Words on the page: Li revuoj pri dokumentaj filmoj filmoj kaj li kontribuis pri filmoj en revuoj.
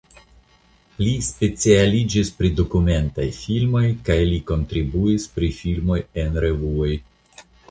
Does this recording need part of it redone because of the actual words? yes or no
yes